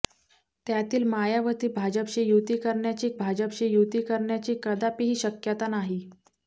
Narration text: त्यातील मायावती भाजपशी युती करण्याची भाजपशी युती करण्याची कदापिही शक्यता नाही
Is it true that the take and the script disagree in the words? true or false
false